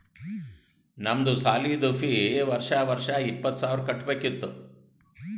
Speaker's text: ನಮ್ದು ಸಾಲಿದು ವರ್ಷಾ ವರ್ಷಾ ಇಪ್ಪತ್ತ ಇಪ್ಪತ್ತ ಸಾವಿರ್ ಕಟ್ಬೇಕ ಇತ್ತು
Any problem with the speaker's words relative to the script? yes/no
yes